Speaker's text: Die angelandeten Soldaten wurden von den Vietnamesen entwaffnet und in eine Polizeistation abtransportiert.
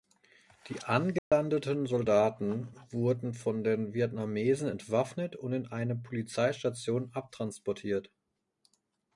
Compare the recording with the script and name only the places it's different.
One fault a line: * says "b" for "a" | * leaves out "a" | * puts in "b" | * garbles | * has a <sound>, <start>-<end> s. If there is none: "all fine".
* has a dropout, 1.2-1.3 s